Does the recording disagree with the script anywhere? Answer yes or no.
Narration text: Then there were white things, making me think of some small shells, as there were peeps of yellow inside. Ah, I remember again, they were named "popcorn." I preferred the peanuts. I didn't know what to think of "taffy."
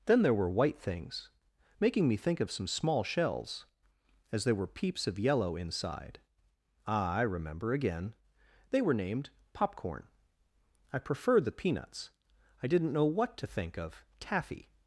no